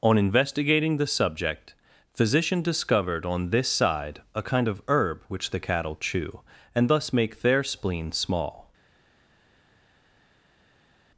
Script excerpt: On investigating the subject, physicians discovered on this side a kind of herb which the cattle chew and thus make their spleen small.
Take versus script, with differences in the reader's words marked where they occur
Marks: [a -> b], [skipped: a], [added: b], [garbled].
On investigating the subject, [physicians -> physician] discovered on this side a kind of herb which the cattle chew and thus make their spleen small.